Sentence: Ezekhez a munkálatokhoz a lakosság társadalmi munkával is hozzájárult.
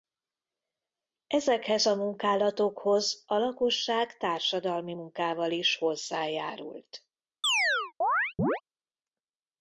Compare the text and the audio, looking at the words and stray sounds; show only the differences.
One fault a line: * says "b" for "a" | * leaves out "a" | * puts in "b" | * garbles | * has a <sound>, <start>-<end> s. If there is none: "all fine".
* has a chirp, 7.4-8.6 s